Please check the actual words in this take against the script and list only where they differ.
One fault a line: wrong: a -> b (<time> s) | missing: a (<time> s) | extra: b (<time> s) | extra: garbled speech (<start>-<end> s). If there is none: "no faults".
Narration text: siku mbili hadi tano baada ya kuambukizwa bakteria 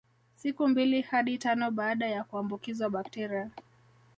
no faults